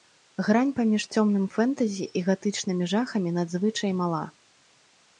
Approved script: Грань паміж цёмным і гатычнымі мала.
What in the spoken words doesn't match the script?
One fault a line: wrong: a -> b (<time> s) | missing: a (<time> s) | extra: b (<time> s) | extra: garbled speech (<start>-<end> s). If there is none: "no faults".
extra: фэнтэзі (1.6 s)
extra: жахамі надзвычай (3.0 s)